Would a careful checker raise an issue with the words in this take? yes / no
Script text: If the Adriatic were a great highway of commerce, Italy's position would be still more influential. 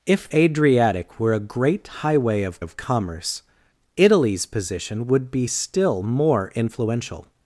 yes